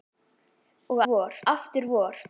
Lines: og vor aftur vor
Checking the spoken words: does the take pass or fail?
pass